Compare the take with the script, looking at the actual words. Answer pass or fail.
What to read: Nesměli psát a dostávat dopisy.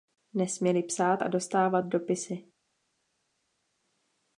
pass